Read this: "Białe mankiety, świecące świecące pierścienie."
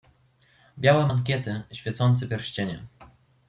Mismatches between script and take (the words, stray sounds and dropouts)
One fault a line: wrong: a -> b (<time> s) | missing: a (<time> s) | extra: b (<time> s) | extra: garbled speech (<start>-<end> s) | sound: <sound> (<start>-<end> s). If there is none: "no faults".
missing: świecące (2.3 s)